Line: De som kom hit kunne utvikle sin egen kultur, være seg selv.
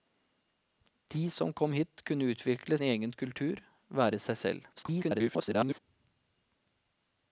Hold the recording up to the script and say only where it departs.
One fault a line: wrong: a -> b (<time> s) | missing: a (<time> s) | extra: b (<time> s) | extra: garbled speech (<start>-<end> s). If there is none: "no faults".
missing: sin (2.8 s)
extra: garbled speech (4.8-5.8 s)